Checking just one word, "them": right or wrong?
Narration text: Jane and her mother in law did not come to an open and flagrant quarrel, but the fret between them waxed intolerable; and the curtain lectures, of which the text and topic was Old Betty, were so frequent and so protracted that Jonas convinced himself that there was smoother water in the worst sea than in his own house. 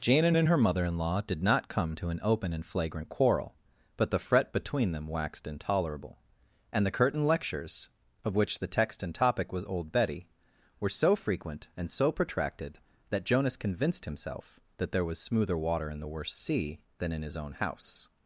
right